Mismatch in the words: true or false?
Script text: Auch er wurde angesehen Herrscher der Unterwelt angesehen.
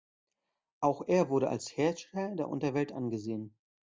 true